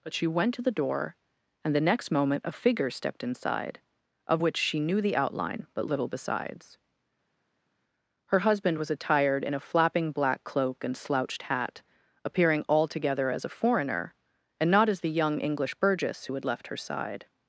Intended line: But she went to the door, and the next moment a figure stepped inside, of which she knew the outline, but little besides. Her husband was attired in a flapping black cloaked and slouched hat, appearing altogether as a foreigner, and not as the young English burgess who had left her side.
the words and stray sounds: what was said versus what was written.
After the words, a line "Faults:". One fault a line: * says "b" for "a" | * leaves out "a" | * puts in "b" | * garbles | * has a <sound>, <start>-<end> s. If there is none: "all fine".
But she went to the door, and the next moment a figure stepped inside, of which she knew the outline, but little besides. Her husband was attired in a flapping black cloak and slouched hat, appearing altogether as a foreigner, and not as the young English burgess who had left her side.
Faults:
* says "cloak" for "cloaked"